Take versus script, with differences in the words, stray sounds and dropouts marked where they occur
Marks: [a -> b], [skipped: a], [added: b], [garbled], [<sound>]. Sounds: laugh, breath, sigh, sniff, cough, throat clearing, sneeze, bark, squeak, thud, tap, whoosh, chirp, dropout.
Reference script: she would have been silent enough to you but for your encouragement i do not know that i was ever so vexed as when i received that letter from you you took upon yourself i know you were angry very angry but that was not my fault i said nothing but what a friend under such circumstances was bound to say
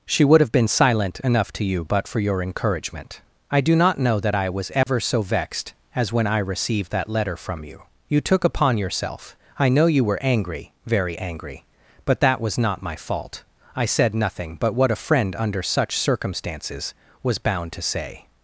she would have been silent enough to you but for your encouragement i do not know that i was ever [dropout] so vexed as when i received that letter from you you took upon yourself i know you were angry very angry but that was not my fault i said nothing but what a friend under such circumstances was bound to say